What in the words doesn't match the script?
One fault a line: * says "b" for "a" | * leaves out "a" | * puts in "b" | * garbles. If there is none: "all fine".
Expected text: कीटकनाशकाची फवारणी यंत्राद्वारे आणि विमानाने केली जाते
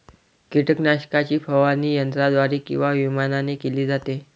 * says "किंवा" for "आणि"